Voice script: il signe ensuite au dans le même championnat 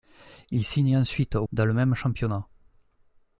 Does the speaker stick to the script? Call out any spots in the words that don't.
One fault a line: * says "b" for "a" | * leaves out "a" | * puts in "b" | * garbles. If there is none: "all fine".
all fine